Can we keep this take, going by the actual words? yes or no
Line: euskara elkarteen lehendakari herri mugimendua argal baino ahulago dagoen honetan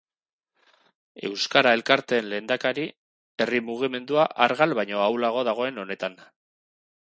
yes